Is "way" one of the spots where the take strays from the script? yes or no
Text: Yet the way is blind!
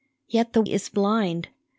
yes